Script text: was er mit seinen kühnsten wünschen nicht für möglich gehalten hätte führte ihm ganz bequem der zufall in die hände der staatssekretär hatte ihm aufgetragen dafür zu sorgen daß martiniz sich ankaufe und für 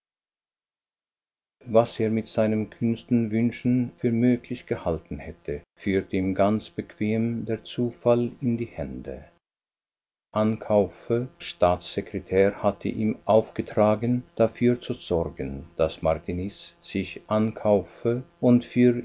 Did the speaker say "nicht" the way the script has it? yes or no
no